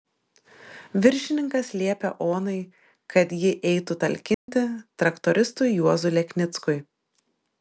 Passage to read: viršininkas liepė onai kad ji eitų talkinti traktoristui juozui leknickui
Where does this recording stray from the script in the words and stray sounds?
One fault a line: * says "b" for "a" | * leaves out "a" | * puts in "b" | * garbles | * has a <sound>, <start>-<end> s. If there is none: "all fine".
* has a dropout, 4.3-4.5 s